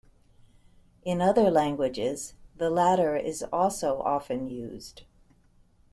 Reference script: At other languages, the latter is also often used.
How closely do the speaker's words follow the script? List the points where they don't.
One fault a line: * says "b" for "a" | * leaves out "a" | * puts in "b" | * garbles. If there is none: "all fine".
* says "In" for "At"